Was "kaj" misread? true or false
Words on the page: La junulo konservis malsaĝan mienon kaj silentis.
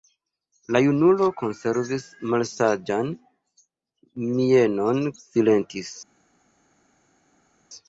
true